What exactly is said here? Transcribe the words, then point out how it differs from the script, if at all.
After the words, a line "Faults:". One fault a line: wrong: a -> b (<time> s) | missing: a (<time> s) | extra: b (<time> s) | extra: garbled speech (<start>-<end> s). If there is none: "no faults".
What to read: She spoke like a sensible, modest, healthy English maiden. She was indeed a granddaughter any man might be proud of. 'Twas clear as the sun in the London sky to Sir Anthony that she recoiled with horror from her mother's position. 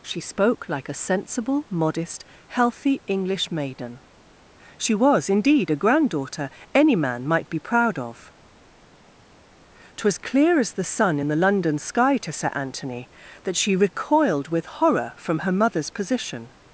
She spoke like a sensible, modest, healthy English maiden. She was indeed a granddaughter any man might be proud of. 'Twas clear as the sun in the London sky to Sir Anthony that she recoiled with horror from her mother's position.
Faults:
no faults